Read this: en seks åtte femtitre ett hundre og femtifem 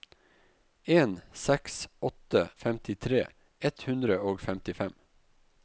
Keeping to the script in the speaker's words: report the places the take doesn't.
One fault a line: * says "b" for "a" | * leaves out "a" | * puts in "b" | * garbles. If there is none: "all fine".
all fine